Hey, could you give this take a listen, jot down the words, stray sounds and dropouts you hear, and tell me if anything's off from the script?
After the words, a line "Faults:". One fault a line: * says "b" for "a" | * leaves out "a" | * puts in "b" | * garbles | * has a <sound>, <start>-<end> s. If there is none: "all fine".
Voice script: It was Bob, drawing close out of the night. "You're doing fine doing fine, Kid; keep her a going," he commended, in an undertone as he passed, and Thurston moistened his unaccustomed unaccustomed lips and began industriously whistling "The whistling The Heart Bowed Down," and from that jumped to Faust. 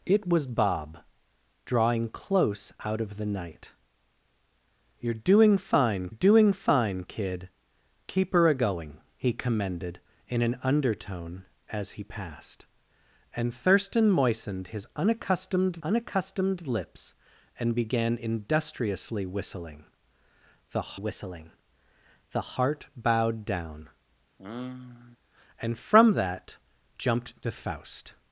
It was Bob, drawing close out of the night. "You're doing fine doing fine, Kid; keep her a going," he commended, in an undertone as he passed, and Thurston moistened his unaccustomed unaccustomed lips and began industriously whistling "The whistling The Heart Bowed Down," and from that jumped to Faust.
Faults:
* has a sigh, 24.4-25.2 s